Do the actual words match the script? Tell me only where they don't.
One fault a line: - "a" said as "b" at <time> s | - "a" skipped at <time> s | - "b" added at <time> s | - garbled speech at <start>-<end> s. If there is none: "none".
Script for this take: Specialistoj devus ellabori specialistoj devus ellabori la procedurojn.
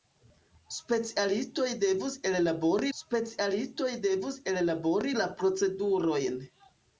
none